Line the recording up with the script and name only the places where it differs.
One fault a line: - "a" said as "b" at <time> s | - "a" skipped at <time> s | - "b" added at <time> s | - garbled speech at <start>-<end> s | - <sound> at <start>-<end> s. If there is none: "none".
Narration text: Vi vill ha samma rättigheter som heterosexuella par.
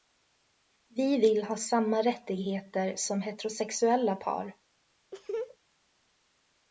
- laugh at 5.1-5.6 s